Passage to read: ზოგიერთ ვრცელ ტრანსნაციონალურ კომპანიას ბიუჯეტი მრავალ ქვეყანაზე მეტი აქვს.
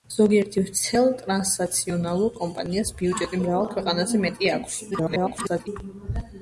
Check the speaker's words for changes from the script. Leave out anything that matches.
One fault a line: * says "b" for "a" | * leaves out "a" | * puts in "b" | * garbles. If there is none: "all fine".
* garbles